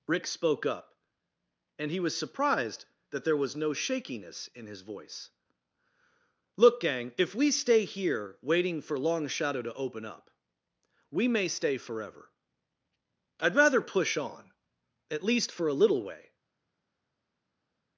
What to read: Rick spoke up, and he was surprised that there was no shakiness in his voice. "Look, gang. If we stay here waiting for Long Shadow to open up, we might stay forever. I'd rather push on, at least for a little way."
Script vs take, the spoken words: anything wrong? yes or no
yes